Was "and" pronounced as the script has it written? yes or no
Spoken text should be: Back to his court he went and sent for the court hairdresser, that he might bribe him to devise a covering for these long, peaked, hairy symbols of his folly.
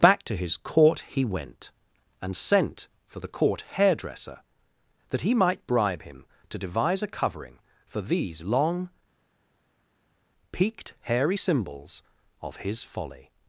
yes